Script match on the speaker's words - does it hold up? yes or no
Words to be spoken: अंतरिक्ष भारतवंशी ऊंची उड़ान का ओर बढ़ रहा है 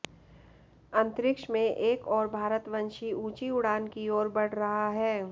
no